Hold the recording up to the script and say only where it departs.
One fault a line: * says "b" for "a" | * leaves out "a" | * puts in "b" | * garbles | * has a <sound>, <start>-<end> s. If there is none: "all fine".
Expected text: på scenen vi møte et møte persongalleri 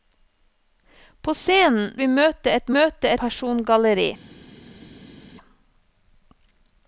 all fine